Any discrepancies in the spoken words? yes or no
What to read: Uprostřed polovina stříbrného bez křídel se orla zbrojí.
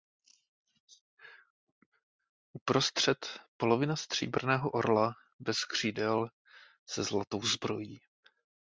yes